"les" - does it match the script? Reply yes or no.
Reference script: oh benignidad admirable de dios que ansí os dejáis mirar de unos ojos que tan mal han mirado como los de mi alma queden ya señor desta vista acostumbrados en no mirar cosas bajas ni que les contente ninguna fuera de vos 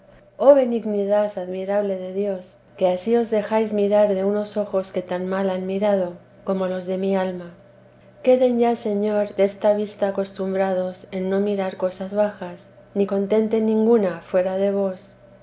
no